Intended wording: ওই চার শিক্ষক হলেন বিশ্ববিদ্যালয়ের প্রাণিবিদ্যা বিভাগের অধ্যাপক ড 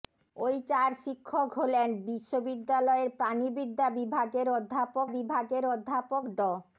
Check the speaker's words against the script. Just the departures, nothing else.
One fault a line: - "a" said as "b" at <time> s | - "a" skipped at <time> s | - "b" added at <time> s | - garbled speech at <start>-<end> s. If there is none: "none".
- "বিভাগের অধ্যাপক" added at 5.1 s